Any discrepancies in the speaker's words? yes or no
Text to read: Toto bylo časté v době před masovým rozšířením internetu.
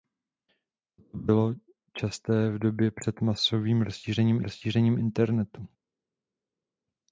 yes